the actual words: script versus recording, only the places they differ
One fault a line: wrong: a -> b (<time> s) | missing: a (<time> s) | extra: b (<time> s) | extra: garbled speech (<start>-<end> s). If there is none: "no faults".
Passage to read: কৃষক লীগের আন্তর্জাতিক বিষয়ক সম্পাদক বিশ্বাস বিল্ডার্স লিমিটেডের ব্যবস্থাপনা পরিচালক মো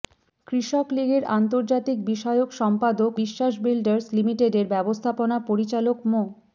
no faults